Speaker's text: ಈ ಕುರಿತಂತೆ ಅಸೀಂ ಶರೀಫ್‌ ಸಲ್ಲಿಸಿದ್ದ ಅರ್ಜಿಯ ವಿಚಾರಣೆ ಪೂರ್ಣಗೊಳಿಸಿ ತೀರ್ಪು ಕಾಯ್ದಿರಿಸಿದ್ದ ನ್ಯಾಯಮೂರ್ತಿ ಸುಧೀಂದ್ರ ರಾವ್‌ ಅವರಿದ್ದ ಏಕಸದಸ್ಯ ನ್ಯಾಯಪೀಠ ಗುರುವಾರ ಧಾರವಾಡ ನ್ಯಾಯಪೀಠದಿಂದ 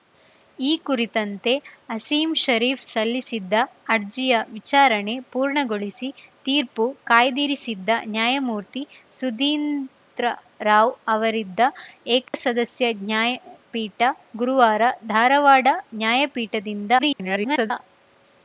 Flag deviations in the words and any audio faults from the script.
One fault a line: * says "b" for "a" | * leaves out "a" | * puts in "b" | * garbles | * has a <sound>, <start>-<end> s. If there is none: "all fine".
* has a dropout, 12.3-12.3 s
* garbles